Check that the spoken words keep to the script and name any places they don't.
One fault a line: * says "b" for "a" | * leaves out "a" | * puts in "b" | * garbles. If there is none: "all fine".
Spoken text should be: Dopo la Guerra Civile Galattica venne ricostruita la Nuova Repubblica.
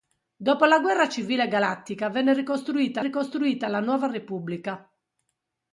* puts in "ricostruita"